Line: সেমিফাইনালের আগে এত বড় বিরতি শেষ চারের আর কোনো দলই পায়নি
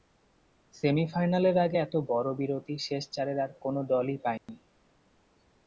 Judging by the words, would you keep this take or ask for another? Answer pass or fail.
pass